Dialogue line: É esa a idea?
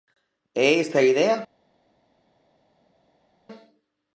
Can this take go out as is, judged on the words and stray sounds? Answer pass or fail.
pass